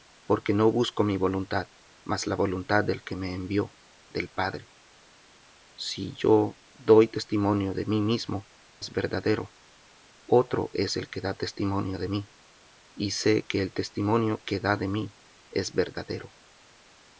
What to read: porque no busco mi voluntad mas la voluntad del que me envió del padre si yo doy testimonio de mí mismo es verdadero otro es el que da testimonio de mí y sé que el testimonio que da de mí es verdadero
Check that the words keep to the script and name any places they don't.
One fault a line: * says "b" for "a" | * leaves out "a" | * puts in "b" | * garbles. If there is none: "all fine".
all fine